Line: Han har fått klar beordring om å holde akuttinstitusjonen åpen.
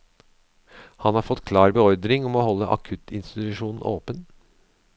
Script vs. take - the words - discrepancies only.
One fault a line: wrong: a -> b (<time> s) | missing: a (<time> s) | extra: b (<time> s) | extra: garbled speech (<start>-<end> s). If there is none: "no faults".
no faults